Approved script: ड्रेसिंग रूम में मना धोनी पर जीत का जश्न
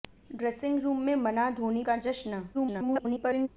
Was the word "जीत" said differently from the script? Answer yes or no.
yes